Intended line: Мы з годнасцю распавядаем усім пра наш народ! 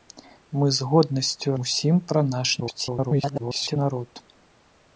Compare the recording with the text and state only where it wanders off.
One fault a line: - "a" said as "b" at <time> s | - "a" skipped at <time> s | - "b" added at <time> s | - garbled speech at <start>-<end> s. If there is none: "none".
- "распавядаем" skipped at 1.5 s
- garbled speech at 2.6-3.8 s